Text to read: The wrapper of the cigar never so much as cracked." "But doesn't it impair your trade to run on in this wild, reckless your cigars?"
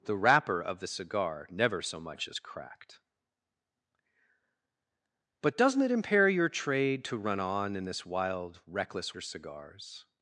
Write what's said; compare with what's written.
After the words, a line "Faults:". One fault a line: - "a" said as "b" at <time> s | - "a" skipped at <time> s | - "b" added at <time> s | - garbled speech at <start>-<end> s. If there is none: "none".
The wrapper of the cigar never so much as cracked." "But doesn't it impair your trade to run on in this wild, reckless your cigars?"
Faults:
none